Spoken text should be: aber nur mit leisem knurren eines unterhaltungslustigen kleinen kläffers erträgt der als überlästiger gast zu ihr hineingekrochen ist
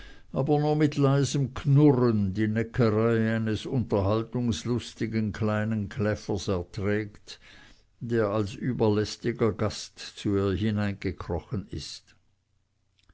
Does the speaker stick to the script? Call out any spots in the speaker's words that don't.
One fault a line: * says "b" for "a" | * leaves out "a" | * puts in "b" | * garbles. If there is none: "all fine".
* puts in "die neckerei"